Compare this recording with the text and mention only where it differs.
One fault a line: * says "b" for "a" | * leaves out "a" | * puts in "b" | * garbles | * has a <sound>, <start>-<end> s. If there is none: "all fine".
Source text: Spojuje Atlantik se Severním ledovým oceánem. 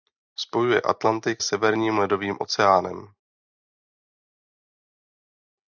* leaves out "se"